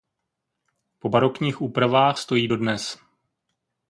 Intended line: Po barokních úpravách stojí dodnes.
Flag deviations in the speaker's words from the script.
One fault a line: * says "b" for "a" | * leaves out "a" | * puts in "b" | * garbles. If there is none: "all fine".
all fine